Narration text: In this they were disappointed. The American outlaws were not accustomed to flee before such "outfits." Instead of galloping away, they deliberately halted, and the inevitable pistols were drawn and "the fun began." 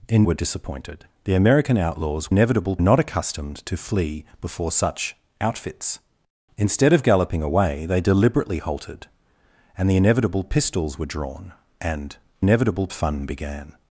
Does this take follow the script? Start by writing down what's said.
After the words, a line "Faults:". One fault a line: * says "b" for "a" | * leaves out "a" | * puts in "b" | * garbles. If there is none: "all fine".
In were disappointed. The American outlaws inevitable not accustomed to flee before such "outfits." Instead of galloping away, they deliberately halted, and the inevitable pistols were drawn and "inevitable fun began."
Faults:
* leaves out "this they"
* says "inevitable" for "were"
* says "inevitable" for "the"